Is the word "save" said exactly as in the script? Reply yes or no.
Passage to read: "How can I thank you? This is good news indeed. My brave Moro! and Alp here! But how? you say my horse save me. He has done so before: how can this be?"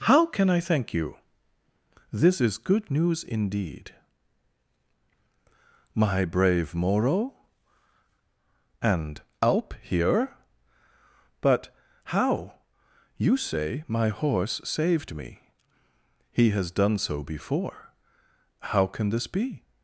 no